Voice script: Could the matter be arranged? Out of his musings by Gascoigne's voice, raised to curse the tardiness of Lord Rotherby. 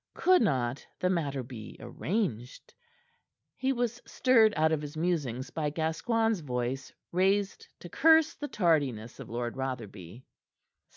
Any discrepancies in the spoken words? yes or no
yes